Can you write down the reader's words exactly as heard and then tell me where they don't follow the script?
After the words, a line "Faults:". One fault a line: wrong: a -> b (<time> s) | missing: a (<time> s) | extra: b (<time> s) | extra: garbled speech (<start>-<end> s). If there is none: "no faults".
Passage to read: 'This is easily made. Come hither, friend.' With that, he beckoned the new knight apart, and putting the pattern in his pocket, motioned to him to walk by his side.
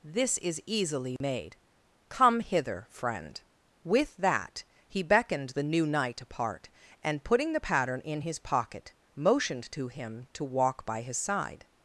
'This is easily made. Come hither, friend.' With that, he beckoned the new knight apart, and putting the pattern in his pocket, motioned to him to walk by his side.
Faults:
no faults